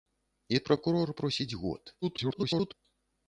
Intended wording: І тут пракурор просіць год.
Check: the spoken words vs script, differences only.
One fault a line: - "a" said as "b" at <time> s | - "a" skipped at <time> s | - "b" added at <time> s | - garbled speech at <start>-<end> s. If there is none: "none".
- "тут" skipped at 0.6 s
- garbled speech at 2.0-2.7 s